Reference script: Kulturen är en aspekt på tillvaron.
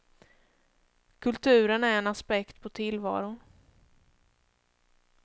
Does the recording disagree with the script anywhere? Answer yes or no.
no